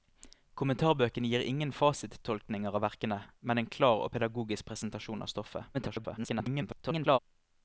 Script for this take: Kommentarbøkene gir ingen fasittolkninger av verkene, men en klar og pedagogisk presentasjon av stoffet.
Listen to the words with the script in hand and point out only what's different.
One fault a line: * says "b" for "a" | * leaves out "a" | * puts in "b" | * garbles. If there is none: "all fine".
* garbles